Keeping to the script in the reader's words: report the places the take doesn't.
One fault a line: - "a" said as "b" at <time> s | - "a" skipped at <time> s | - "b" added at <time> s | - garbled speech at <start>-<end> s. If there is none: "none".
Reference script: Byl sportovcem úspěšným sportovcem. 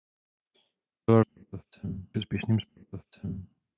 none